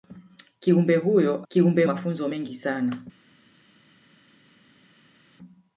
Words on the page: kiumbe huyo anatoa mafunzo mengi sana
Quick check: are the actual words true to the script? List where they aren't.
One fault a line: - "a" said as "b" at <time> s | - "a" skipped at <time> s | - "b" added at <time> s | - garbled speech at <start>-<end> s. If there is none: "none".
- "anatoa" said as "kiumbe" at 1.5 s